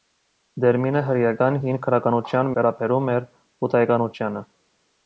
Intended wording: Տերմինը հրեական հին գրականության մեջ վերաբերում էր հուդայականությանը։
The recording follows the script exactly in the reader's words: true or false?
false